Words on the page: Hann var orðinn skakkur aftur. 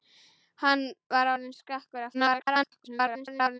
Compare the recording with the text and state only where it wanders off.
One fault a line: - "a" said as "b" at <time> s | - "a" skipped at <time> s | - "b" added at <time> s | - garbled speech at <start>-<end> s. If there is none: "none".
- garbled speech at 2.1-3.6 s